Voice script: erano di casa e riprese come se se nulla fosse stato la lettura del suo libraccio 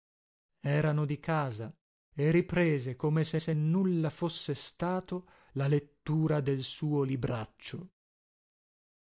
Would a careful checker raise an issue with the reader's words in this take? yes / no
no